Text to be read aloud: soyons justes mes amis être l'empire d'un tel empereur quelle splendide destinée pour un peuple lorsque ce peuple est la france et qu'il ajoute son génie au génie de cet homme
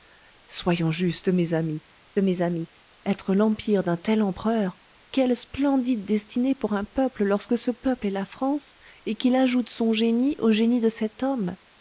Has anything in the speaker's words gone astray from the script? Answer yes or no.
yes